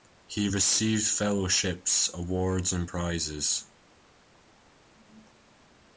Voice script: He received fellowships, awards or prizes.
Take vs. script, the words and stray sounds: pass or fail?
fail